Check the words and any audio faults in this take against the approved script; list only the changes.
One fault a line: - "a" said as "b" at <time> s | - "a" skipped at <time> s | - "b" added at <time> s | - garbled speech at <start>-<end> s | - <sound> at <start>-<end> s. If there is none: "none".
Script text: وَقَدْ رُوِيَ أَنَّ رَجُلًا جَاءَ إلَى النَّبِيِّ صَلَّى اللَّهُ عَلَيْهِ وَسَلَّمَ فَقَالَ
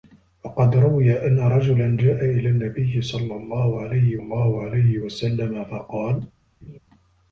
- "اللَّهُ عَلَيْهِ" added at 4.1 s
- laugh at 6.6-6.8 s